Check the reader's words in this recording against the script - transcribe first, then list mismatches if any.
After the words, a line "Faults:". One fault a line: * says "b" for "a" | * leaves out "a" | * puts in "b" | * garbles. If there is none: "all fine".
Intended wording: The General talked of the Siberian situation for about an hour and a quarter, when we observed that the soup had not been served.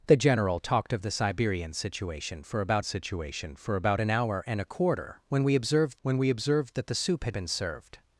The General talked of the Siberian situation for about situation for about an hour and a quarter, when we observed when we observed that the soup had been served.
Faults:
* puts in "situation for about"
* puts in "when we observed"
* leaves out "not"